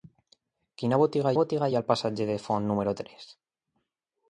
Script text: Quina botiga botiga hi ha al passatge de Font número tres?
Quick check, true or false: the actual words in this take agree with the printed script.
true